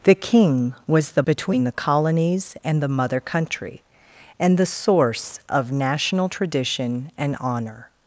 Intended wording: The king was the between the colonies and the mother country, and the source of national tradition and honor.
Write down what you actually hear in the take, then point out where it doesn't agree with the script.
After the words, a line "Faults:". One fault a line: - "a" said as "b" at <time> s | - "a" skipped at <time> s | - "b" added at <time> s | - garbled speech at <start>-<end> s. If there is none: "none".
The king was the between the colonies and the mother country, and the source of national tradition and honor.
Faults:
none